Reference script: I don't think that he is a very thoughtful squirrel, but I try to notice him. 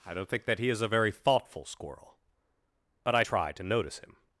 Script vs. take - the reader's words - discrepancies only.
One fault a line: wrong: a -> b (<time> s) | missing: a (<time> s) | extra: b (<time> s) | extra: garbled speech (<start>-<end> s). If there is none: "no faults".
no faults